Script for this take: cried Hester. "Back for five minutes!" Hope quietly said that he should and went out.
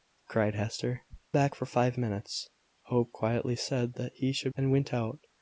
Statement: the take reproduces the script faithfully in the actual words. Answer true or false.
true